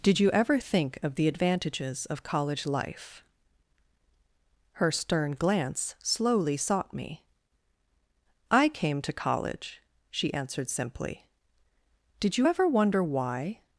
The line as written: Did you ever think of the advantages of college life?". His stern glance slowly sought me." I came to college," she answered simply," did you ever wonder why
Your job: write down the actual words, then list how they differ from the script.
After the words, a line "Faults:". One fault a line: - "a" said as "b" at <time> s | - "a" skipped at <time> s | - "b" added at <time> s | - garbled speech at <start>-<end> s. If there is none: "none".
Did you ever think of the advantages of college life?". Her stern glance slowly sought me." I came to college," she answered simply," did you ever wonder why
Faults:
- "His" said as "Her" at 4.7 s